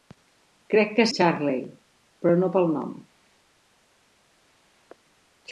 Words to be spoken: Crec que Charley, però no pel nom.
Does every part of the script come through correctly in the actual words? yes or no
yes